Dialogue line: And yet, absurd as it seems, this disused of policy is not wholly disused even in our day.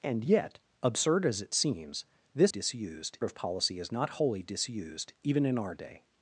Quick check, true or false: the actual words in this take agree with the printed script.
true